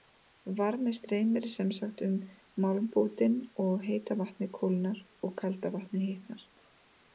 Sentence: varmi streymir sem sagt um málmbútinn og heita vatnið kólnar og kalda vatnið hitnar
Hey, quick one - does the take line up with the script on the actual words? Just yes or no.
yes